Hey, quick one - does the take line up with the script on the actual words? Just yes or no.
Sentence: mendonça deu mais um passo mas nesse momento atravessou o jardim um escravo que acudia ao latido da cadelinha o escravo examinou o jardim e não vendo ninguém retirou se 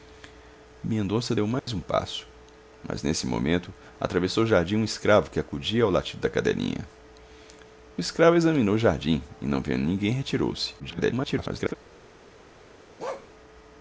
no